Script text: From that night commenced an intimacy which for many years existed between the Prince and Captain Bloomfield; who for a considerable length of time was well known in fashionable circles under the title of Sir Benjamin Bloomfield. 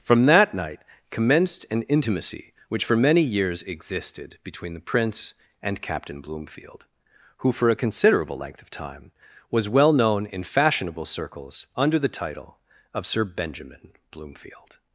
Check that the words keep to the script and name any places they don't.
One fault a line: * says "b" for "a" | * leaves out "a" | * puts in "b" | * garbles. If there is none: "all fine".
all fine